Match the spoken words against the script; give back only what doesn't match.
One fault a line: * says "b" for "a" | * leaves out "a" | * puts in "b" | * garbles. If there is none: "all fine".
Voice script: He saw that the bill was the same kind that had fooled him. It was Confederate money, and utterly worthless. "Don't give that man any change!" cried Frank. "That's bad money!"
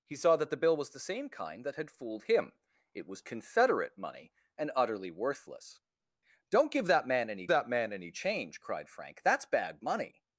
* puts in "that man any"